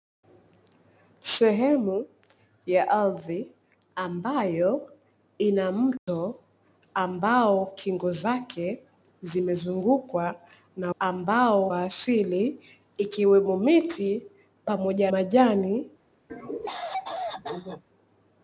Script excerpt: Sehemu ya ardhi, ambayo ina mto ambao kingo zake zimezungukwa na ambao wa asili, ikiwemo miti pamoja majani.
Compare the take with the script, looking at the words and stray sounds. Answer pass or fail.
fail